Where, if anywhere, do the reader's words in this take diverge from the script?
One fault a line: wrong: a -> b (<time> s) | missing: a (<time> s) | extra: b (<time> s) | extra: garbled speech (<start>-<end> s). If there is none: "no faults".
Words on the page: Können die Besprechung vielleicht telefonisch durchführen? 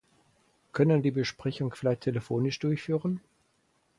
no faults